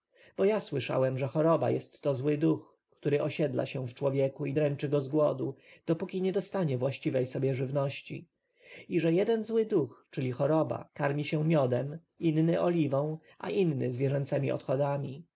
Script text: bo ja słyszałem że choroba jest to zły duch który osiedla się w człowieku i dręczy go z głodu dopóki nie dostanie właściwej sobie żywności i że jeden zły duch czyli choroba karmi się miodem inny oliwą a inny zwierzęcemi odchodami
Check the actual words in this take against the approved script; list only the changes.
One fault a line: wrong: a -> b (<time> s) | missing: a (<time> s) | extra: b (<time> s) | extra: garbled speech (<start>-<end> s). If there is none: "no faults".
no faults